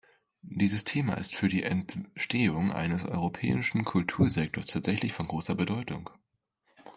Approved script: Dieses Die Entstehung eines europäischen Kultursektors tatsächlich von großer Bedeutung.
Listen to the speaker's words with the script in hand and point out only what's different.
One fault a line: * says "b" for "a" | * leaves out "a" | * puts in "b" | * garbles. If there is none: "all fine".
* puts in "Thema ist für"